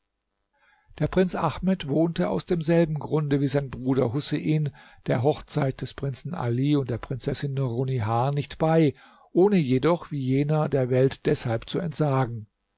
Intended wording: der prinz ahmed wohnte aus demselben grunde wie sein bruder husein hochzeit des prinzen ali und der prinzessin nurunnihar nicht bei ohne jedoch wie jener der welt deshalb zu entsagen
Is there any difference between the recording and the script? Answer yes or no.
yes